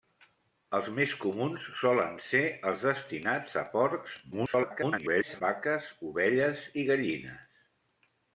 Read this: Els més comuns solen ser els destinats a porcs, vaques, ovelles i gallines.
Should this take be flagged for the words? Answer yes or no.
yes